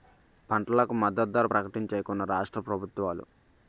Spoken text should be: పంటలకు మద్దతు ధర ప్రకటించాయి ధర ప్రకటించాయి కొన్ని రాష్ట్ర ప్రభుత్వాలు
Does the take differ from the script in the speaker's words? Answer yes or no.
yes